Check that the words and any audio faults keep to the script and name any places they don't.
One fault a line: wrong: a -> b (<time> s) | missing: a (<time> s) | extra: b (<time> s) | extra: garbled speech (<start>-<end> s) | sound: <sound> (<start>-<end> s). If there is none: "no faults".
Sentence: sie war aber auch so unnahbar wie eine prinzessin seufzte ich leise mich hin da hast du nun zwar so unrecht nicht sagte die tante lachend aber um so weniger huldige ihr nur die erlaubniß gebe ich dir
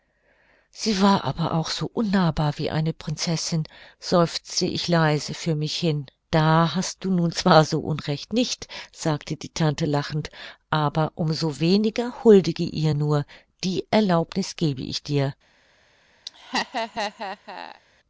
extra: für (5.3 s)
sound: laugh (16.3-17.8 s)